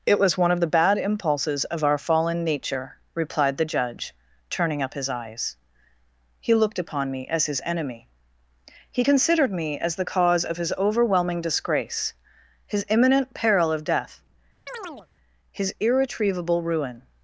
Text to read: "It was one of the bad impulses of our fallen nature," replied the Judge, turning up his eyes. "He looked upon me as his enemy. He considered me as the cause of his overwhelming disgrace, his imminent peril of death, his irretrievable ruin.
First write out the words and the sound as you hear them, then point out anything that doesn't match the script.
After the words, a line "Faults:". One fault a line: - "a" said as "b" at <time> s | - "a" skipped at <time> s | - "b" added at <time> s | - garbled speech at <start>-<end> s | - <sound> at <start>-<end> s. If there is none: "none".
"It was one of the bad impulses of our fallen nature," replied the Judge, turning up his eyes. "He looked upon me as his enemy. He considered me as the cause of his overwhelming disgrace, his imminent peril of death, his irretrievable ruin.
Faults:
- chirp at 14.7-15.1 s